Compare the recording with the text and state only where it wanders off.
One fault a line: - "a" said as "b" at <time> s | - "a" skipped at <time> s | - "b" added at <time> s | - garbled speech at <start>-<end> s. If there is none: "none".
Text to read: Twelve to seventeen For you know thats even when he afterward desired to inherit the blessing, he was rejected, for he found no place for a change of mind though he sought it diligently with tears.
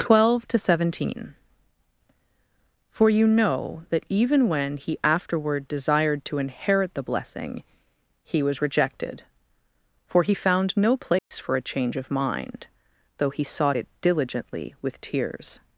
- "thats" said as "that" at 3.9 s